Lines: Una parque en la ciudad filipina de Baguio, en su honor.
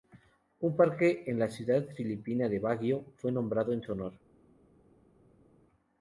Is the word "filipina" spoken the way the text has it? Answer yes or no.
yes